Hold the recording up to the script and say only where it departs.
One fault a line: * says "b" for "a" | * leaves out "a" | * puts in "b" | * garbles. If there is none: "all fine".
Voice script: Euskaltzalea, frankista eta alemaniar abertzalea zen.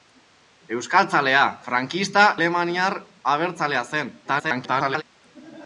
* leaves out "eta"
* garbles